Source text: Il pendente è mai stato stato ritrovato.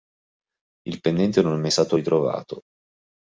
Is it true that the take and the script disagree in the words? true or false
true